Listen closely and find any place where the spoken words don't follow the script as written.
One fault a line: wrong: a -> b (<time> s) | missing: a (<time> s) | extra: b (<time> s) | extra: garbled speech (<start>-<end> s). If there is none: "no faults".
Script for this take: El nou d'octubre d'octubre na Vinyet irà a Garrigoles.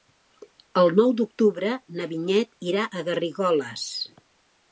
missing: d'octubre (1.8 s)